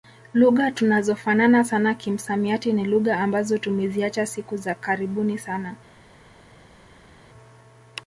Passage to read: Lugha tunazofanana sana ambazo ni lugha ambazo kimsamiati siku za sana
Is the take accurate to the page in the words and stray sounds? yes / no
no